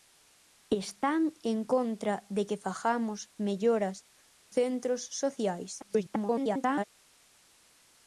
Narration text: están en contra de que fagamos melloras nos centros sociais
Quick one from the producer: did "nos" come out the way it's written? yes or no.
no